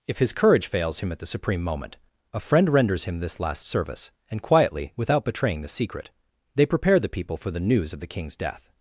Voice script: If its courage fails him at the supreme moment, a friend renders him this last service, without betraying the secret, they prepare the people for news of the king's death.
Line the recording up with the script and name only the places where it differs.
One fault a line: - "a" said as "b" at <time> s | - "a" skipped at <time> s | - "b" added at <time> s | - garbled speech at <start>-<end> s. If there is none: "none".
- "its" said as "his" at 0.2 s
- "and quietly" added at 4.3 s
- "the" added at 7.5 s